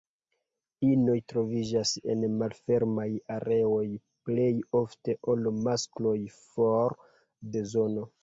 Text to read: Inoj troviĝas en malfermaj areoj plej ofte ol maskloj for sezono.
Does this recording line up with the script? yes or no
yes